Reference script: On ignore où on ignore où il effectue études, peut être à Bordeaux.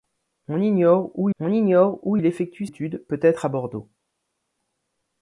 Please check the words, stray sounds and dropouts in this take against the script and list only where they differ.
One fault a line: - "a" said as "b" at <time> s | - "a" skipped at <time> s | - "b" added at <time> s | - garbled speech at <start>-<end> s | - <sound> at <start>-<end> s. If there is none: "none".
none